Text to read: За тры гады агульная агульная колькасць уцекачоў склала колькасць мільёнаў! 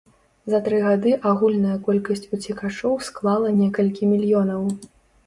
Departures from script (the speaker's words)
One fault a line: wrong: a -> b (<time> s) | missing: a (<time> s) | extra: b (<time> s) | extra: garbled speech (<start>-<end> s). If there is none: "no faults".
missing: агульная (1.7 s)
wrong: колькасць -> некалькі (3.6 s)